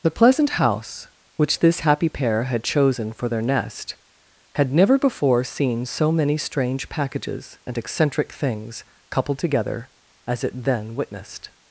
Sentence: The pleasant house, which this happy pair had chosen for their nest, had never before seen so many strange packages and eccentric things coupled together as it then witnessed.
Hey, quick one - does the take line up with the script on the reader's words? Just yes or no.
yes